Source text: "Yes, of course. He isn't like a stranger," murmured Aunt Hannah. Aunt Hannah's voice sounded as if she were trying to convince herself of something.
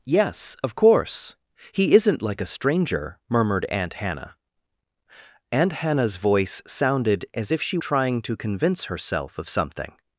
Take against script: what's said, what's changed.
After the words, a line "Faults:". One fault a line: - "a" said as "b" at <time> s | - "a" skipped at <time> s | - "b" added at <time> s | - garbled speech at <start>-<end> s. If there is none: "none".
"Yes, of course. He isn't like a stranger," murmured Aunt Hannah. Aunt Hannah's voice sounded as if she trying to convince herself of something.
Faults:
- "were" skipped at 7.8 s